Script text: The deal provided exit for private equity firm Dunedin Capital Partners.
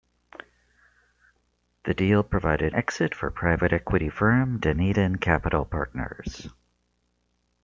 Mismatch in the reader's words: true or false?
false